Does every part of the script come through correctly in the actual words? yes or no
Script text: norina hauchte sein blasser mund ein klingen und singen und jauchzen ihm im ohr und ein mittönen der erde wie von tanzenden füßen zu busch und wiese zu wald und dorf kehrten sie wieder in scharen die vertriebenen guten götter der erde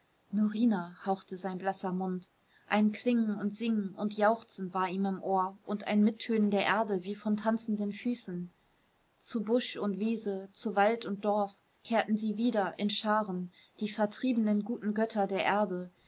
no